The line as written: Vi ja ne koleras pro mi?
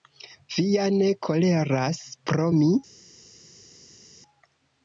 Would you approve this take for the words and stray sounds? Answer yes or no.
yes